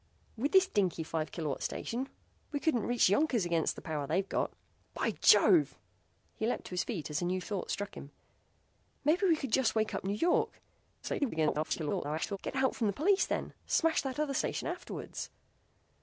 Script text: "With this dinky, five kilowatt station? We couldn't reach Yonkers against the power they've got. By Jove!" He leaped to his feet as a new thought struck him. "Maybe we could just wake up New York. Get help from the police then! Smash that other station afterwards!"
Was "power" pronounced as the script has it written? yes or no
yes